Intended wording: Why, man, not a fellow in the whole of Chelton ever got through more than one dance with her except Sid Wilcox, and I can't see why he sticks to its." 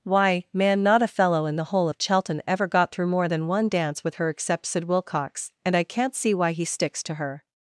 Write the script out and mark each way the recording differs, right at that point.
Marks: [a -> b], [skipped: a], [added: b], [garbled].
Why, man, not a fellow in the whole of Chelton ever got through more than one dance with her except Sid Wilcox, and I can't see why he sticks to [its." -> her]